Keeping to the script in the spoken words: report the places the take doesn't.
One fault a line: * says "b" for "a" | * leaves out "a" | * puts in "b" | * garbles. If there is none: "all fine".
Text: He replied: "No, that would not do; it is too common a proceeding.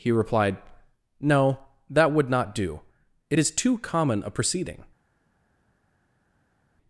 all fine